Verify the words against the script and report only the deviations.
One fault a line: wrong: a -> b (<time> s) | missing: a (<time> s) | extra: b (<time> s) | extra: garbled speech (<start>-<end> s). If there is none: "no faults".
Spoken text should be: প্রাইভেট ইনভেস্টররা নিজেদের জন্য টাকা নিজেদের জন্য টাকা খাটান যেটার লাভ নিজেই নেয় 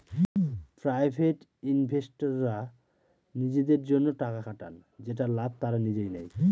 missing: নিজেদের জন্য টাকা (4.4 s)
extra: তারা (5.6 s)